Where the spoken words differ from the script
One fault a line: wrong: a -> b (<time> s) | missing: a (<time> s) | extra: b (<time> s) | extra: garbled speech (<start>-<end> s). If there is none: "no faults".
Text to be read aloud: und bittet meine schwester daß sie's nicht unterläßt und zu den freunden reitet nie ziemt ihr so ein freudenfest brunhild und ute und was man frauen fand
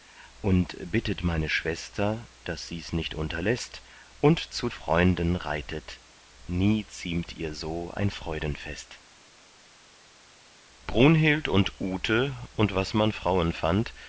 missing: den (4.7 s)